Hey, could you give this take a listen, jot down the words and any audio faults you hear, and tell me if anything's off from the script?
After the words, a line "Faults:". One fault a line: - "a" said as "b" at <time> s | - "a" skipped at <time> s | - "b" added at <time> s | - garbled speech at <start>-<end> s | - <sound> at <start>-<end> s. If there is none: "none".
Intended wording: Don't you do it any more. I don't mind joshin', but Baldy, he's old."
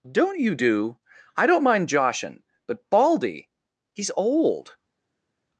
Don't you do. I don't mind joshin', but Baldy, he's old."
Faults:
- "it any more" skipped at 1.0 s